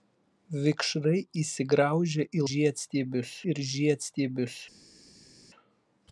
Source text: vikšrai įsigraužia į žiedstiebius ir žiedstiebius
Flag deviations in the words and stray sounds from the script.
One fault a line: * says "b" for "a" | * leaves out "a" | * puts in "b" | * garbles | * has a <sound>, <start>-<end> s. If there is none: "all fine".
all fine